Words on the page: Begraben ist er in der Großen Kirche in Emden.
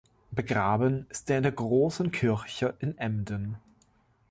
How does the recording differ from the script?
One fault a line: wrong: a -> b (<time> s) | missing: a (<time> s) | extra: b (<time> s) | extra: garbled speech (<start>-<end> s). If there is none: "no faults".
no faults